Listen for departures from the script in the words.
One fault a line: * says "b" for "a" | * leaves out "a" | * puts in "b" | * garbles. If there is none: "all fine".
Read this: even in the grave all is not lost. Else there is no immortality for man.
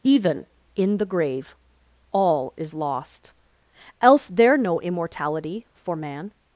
* leaves out "not"
* leaves out "is"